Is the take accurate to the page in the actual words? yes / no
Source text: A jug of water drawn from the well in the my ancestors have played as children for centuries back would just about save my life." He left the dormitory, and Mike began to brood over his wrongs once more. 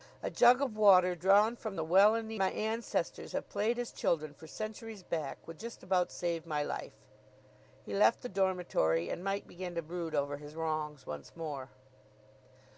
yes